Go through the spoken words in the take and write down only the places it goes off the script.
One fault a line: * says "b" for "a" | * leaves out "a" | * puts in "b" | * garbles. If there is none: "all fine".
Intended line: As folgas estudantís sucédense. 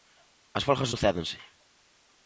* leaves out "estudantís"